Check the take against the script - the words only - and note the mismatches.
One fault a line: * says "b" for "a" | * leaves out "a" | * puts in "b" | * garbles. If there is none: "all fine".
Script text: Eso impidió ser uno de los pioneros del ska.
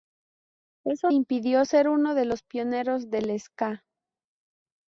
all fine